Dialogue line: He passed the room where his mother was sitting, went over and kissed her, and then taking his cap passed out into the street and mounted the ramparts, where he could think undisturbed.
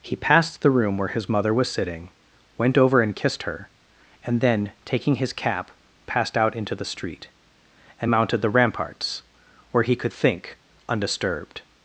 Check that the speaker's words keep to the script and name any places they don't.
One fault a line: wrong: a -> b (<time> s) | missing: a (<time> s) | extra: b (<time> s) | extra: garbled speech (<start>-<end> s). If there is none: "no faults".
no faults